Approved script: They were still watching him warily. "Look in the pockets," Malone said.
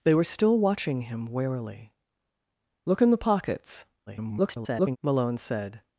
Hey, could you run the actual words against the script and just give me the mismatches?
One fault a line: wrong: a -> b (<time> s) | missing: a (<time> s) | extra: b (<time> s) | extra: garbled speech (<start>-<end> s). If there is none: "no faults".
extra: garbled speech (4.1-5.0 s)